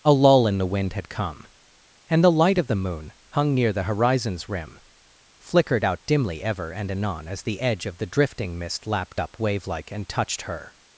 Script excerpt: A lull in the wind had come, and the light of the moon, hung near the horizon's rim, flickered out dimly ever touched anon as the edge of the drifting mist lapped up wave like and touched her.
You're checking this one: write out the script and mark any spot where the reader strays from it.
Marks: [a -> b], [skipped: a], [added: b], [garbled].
A lull in the wind had come, and the light of the moon, hung near the horizon's rim, flickered out dimly ever [touched -> and] anon as the edge of the drifting mist lapped up wave like and touched her.